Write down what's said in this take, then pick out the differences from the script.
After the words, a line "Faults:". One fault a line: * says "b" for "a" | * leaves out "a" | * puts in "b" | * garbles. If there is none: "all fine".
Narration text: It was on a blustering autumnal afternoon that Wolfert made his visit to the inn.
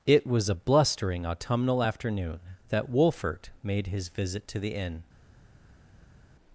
It was a blustering autumnal afternoon that Wolfert made his visit to the inn.
Faults:
* leaves out "on"